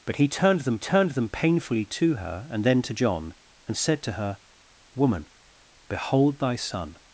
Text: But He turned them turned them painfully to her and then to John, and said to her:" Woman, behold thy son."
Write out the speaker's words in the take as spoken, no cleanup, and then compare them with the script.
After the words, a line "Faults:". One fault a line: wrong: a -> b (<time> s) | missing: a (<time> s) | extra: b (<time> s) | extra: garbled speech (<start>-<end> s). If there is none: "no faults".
But He turned them turned them painfully to her and then to John, and said to her:" Woman, behold thy son."
Faults:
no faults